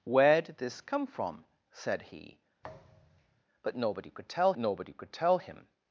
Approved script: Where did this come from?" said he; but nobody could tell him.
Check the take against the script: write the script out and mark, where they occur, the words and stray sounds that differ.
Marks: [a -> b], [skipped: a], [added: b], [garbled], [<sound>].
Where did this come from?" said he; [thud] but nobody could tell [added: nobody could tell] him.